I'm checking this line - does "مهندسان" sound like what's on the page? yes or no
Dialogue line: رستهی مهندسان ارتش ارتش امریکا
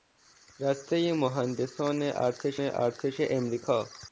yes